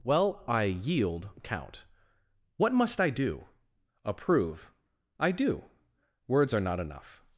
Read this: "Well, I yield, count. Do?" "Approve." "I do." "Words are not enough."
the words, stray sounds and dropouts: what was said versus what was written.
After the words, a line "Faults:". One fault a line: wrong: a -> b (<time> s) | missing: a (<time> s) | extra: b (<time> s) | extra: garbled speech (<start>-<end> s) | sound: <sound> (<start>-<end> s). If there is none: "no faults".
"Well, I yield, count. What must I do?" "Approve." "I do." "Words are not enough."
Faults:
extra: What must I (2.5 s)